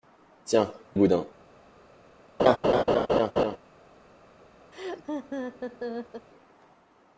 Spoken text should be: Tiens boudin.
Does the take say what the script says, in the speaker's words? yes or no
yes